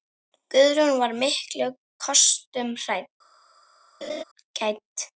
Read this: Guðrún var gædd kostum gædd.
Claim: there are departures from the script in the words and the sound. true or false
true